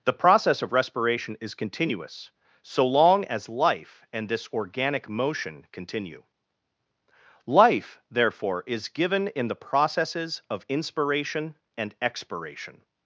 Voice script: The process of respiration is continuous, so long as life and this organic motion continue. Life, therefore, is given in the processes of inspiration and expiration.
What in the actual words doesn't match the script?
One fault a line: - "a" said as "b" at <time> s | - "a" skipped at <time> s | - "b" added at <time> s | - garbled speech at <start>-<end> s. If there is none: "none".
none